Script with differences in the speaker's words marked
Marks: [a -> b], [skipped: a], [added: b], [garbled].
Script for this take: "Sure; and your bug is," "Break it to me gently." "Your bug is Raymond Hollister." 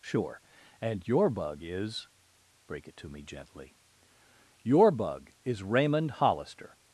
"Sure; and your bug is," "Break it to me gently." "Your bug is Raymond Hollister."